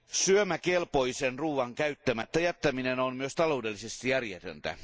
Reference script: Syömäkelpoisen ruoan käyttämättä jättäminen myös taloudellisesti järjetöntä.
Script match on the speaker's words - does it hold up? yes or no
no